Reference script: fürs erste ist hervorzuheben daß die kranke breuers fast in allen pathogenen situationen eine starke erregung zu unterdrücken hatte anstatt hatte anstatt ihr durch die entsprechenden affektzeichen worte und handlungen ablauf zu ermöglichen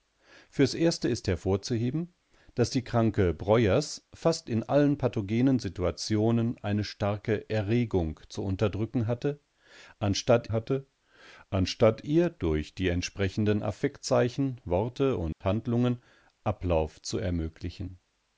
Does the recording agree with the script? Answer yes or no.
yes